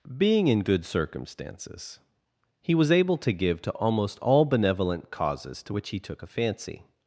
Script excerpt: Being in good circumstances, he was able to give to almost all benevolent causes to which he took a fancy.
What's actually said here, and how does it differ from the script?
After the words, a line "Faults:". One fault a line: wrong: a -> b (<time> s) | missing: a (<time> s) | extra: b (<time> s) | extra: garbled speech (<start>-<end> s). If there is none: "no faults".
Being in good circumstances, he was able to give to almost all benevolent causes to which he took a fancy.
Faults:
no faults